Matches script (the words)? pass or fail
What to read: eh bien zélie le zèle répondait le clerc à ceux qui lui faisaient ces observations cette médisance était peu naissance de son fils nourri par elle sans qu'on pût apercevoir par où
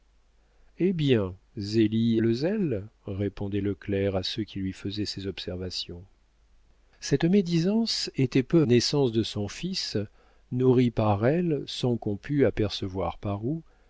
pass